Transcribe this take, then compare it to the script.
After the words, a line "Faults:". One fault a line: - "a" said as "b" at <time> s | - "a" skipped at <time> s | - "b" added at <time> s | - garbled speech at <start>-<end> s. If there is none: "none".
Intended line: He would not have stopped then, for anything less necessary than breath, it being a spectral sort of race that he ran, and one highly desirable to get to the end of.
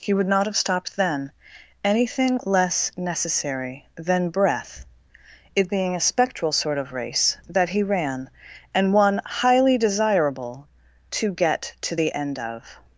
He would not have stopped then, anything less necessary than breath, it being a spectral sort of race that he ran, and one highly desirable to get to the end of.
Faults:
- "for" skipped at 1.3 s